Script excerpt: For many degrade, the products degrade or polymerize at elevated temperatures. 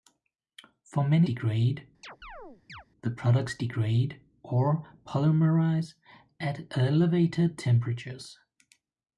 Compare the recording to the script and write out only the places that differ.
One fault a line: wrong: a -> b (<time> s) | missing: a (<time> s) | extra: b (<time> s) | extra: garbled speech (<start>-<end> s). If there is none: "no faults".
no faults